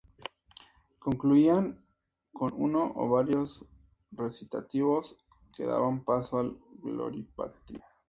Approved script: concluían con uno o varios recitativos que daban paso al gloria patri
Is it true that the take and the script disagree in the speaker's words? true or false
false